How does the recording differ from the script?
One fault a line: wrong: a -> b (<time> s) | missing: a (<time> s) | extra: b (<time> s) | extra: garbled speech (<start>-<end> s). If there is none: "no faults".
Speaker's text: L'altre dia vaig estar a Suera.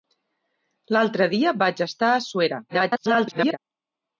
extra: garbled speech (2.7-3.6 s)